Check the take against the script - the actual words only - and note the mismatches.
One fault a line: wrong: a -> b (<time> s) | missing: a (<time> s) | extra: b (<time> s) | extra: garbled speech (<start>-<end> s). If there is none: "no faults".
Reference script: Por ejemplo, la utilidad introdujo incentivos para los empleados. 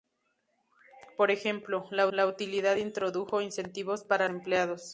extra: la (2.1 s)
missing: los (4.3 s)